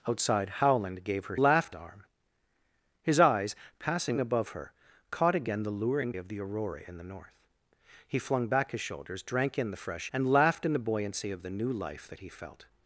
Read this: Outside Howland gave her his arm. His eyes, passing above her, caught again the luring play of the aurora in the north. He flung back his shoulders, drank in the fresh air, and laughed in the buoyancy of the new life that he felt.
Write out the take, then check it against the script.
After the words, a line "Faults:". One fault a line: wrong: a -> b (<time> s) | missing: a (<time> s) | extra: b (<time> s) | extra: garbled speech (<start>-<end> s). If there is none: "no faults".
Outside Howland gave her laughed arm. His eyes, passing above her, caught again the luring of the aurora in the north. He flung back his shoulders, drank in the fresh and laughed in the buoyancy of the new life that he felt.
Faults:
wrong: his -> laughed (1.4 s)
missing: play (6.1 s)
missing: air (10.1 s)